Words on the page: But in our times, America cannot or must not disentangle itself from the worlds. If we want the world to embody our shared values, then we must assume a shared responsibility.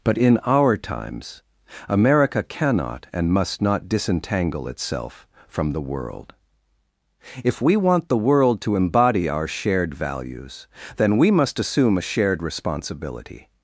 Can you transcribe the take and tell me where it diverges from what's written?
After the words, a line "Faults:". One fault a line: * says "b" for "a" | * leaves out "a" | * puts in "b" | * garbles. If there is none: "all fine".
But in our times, America cannot and must not disentangle itself from the world. If we want the world to embody our shared values, then we must assume a shared responsibility.
Faults:
* says "and" for "or"
* says "world" for "worlds"